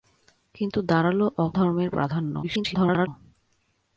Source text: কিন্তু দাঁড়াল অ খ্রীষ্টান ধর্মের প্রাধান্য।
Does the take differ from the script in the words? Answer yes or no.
yes